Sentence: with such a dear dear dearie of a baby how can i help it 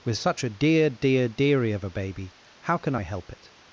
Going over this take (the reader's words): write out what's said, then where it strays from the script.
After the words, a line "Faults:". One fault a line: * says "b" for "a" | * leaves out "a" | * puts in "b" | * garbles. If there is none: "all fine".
with such a dear dear dearie of a baby how can i help it
Faults:
all fine